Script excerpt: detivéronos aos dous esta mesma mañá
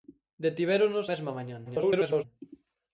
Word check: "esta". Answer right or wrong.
wrong